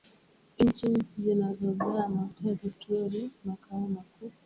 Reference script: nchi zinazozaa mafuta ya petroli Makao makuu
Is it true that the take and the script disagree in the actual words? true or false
false